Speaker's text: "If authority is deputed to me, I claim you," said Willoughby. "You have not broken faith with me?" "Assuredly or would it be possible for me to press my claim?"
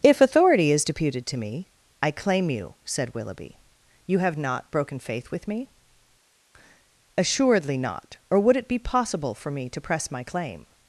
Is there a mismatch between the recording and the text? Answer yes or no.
yes